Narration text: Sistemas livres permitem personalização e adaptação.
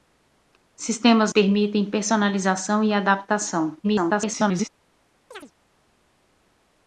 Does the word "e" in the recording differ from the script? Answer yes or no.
no